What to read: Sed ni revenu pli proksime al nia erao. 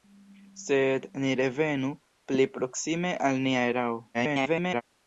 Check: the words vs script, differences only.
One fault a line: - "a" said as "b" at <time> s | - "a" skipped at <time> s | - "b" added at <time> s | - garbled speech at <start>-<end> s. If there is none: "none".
- garbled speech at 4.1-4.8 s